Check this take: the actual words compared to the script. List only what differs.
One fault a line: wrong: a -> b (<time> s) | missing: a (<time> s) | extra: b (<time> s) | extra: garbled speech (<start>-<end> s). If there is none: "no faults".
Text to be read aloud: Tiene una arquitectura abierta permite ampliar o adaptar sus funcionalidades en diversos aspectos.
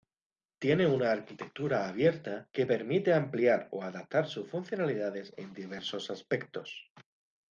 extra: que (2.5 s)